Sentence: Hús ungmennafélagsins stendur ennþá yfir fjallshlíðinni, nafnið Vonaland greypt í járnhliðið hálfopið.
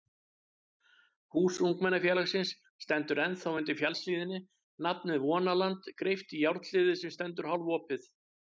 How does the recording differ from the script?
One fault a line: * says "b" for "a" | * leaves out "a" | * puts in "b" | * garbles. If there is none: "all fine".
* says "undir" for "yfir"
* puts in "sem stendur"